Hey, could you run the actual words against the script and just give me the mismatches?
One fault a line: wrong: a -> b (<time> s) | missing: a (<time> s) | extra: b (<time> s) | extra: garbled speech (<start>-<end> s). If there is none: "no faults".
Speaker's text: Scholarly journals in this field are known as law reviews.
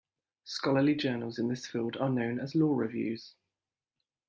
no faults